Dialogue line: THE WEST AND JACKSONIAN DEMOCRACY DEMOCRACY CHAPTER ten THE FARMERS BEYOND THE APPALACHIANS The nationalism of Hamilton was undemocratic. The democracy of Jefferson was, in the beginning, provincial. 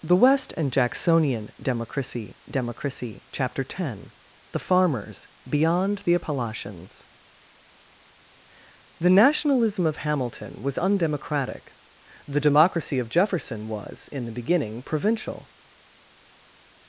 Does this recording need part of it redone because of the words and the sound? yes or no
no